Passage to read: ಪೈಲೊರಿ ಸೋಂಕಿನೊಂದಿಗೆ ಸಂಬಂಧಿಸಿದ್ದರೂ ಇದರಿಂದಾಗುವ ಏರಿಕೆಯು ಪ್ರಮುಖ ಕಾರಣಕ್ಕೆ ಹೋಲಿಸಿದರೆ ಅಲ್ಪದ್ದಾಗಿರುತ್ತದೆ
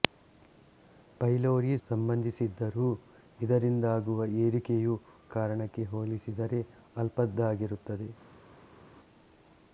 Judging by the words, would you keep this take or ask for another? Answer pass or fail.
fail